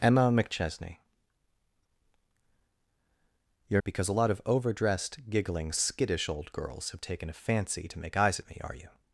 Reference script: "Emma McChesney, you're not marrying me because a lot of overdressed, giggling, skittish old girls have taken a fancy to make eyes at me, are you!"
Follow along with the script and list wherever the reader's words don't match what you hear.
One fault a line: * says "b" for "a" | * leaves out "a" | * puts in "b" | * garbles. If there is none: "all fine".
* leaves out "not marrying me"